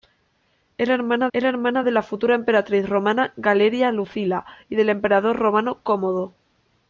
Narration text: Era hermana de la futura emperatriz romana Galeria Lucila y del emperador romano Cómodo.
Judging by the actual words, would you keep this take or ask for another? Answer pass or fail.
fail